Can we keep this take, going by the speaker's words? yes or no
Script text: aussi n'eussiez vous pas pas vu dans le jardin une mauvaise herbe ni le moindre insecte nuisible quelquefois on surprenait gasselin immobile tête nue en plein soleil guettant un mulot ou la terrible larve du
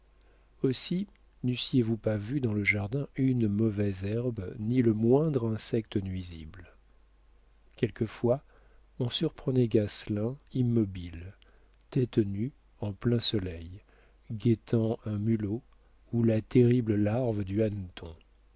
no